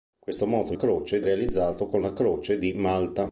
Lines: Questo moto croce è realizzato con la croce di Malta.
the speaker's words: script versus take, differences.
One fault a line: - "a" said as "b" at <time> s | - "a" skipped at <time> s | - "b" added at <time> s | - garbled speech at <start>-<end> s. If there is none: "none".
none